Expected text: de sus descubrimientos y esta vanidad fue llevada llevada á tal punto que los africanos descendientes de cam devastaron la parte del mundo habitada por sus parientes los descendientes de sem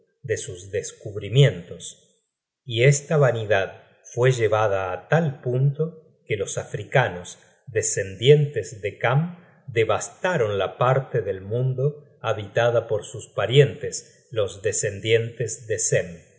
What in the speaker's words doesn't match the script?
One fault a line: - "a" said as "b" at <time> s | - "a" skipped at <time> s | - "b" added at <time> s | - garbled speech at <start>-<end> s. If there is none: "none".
- "llevada" skipped at 4.9 s